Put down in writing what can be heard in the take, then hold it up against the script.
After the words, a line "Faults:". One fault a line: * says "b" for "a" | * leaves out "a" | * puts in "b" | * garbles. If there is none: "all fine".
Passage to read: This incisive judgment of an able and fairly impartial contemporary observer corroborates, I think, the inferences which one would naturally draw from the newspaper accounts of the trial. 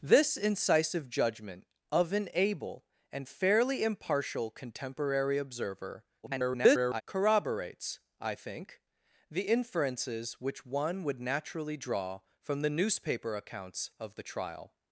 This incisive judgment of an able and fairly impartial contemporary observer [garbled] corroborates, I think, the inferences which one would naturally draw from the newspaper accounts of the trial.
Faults:
* garbles